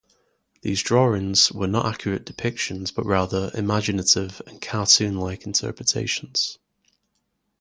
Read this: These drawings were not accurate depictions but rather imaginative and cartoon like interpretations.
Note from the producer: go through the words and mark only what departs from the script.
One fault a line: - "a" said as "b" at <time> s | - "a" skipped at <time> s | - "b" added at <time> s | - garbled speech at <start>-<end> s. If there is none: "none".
none